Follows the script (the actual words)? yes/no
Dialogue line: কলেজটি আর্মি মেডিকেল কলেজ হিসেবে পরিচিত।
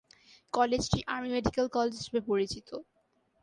yes